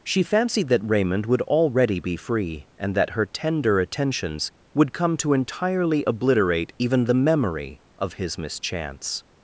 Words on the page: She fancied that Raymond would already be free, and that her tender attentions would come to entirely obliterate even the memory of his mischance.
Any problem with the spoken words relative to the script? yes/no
no